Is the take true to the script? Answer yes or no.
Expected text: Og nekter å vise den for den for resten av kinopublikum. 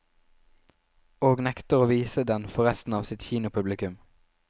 no